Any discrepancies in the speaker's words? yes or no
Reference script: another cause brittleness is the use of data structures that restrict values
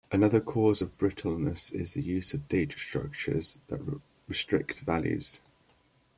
yes